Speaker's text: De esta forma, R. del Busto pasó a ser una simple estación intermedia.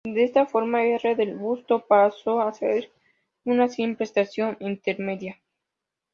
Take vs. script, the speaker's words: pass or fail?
pass